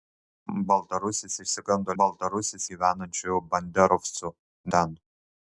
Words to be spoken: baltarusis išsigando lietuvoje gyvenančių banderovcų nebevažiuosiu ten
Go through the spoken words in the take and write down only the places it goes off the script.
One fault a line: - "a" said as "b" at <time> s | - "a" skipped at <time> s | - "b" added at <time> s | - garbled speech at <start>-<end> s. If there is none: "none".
- "lietuvoje" said as "baltarusis" at 2.0 s
- "nebevažiuosiu" skipped at 4.3 s